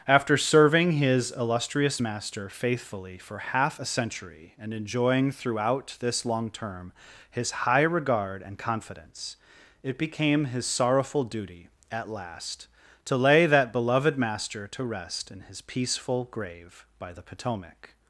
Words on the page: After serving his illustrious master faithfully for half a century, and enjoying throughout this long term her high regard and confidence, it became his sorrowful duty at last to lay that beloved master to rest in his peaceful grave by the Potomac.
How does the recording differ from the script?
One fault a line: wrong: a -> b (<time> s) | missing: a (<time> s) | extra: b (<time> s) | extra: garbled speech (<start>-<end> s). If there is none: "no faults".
wrong: her -> his (7.3 s)